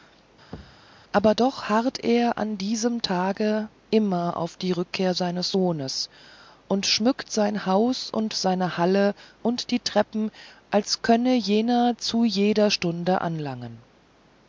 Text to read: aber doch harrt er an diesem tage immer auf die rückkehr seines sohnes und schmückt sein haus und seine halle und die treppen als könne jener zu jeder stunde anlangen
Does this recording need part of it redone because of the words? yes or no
no